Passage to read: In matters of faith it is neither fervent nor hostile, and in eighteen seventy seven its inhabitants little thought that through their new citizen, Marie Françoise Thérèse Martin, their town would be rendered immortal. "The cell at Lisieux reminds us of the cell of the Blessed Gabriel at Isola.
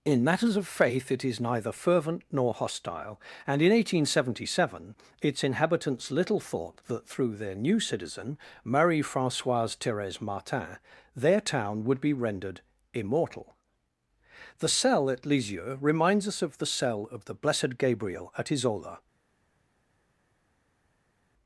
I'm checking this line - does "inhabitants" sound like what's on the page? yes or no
yes